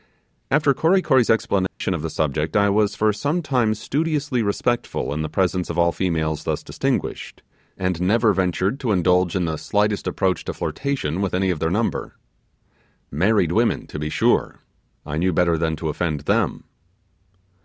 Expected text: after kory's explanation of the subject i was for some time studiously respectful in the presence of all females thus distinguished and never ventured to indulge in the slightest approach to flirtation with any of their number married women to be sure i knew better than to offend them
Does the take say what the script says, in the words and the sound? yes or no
no